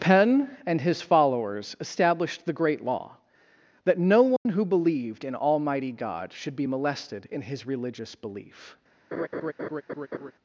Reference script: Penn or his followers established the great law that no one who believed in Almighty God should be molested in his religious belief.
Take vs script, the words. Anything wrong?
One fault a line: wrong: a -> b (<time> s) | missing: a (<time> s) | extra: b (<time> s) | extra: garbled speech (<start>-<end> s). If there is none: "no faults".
wrong: or -> and (0.7 s)